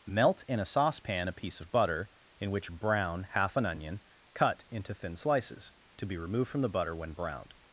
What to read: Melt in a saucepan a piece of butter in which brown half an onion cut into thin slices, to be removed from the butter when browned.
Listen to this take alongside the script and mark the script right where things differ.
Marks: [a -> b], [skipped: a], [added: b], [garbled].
Melt in a saucepan a piece of butter in which brown half an onion cut into thin slices, to be removed from the butter when browned.